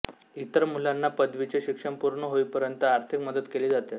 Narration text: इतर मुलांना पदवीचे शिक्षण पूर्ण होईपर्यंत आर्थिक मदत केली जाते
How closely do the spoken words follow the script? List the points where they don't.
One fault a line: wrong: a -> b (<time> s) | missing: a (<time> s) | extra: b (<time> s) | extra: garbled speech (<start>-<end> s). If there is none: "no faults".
no faults